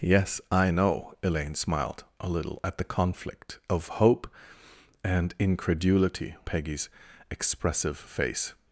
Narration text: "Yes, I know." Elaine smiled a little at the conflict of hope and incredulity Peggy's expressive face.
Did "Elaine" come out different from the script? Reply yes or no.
no